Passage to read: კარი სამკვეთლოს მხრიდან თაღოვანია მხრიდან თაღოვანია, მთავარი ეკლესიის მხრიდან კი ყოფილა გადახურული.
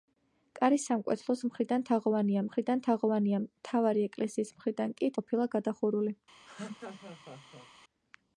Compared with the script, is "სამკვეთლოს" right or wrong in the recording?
right